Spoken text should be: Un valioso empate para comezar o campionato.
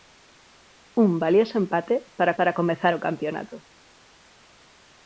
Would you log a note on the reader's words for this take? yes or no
yes